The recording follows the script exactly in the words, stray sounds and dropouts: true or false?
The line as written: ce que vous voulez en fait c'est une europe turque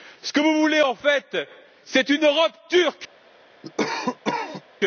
false